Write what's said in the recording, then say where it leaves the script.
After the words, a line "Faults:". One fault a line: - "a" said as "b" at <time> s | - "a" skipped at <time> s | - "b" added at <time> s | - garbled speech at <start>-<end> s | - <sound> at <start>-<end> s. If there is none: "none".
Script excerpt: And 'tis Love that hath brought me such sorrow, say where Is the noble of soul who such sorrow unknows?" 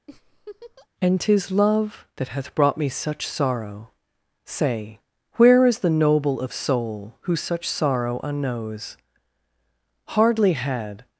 And 'tis Love that hath brought me such sorrow, say where Is the noble of soul who such sorrow unknows?" Hardly had
Faults:
- laugh at 0.1-0.9 s
- "Hardly had" added at 10.1 s